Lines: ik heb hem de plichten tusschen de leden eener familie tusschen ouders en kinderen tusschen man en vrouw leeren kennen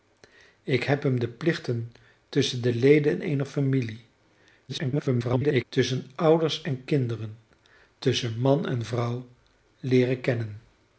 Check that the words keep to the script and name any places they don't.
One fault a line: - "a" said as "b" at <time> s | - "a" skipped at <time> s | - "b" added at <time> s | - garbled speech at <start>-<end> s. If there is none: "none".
- garbled speech at 4.7-5.6 s